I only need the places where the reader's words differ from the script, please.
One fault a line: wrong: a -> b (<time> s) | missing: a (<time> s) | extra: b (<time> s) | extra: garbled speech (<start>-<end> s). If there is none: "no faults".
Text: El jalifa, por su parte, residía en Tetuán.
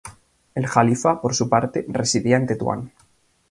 no faults